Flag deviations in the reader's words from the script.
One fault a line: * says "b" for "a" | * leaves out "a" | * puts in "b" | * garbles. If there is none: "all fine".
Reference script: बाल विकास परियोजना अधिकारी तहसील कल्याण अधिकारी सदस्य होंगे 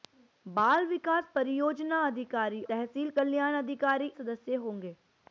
all fine